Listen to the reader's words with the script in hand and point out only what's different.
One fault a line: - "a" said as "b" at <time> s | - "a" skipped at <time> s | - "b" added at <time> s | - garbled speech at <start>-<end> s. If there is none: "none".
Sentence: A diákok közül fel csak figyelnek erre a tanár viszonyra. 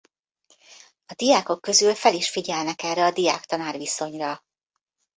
- "csak" said as "is" at 2.1 s
- "diák" added at 3.1 s